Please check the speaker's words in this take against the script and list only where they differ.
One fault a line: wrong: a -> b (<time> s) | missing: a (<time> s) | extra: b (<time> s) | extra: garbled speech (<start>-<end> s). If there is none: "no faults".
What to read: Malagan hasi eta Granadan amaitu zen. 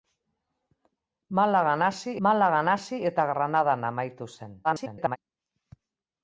extra: malagan hasi (2.3 s)
extra: garbled speech (4.6-5.2 s)